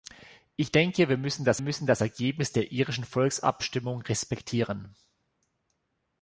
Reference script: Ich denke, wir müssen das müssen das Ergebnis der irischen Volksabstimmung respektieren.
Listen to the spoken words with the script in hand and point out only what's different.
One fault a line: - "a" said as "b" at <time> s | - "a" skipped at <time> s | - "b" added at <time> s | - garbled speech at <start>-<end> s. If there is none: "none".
none